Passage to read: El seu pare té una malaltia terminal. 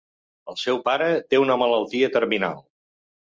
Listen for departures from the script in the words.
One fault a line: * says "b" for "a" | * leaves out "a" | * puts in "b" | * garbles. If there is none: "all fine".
all fine